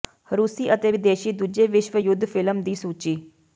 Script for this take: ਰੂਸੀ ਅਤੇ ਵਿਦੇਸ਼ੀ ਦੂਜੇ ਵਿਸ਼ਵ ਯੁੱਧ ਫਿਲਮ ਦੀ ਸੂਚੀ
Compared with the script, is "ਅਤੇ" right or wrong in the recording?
right